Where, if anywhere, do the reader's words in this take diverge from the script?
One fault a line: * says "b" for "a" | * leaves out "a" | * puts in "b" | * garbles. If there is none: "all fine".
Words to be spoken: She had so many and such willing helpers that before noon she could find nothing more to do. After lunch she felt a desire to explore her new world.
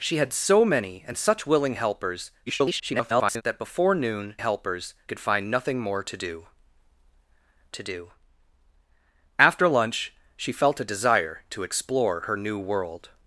* garbles
* says "helpers" for "she"
* puts in "to do"